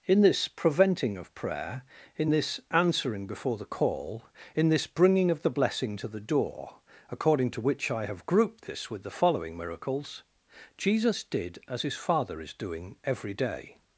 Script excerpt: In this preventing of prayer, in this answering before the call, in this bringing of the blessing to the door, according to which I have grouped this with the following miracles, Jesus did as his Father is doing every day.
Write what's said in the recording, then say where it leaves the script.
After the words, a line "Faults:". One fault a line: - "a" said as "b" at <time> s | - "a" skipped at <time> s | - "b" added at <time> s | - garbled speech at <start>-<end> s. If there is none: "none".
In this preventing of prayer, in this answering before the call, in this bringing of the blessing to the door, according to which I have grouped this with the following miracles, Jesus did as his Father is doing every day.
Faults:
none